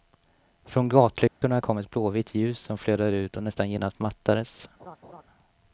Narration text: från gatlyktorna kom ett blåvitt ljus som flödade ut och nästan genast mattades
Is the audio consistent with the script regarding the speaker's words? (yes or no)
yes